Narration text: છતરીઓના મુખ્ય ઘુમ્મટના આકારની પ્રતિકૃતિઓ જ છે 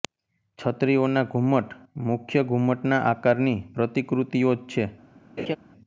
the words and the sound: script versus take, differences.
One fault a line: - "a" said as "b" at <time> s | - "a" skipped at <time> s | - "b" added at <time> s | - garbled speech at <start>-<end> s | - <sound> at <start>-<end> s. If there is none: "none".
- "ઘુમ્મટ" added at 1.2 s
- laugh at 5.4-5.6 s